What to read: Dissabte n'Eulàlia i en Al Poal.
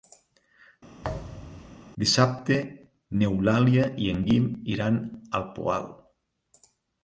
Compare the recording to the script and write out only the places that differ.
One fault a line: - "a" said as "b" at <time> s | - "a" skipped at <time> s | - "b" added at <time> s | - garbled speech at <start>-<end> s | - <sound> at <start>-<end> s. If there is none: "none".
- thud at 1.0-1.8 s
- "Guim iran" added at 4.3 s